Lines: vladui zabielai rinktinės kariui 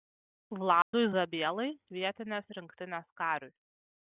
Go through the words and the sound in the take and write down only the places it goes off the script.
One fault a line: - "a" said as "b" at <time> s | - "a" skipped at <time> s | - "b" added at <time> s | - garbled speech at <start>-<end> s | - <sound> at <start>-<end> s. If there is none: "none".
- dropout at 0.8-0.9 s
- "vietinės" added at 2.0 s